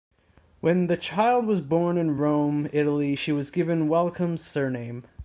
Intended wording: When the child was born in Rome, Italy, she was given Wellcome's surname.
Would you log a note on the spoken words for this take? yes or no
no